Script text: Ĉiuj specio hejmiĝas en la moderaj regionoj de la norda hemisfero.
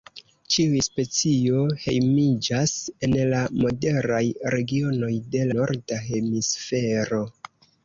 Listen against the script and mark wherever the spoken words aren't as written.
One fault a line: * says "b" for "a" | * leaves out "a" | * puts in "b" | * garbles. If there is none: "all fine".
* leaves out "la"